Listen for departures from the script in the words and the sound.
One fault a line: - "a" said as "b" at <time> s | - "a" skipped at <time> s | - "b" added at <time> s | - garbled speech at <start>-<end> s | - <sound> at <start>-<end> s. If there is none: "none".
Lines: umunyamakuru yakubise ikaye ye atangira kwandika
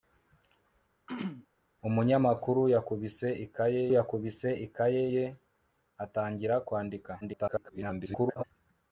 - throat clearing at 1.1-1.5 s
- "yakubise ikaye" added at 4.0 s
- garbled speech at 7.2-8.4 s